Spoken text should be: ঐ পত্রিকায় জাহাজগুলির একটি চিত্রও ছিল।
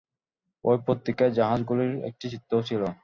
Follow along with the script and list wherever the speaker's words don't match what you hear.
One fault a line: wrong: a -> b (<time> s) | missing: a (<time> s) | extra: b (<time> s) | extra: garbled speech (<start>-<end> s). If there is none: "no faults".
no faults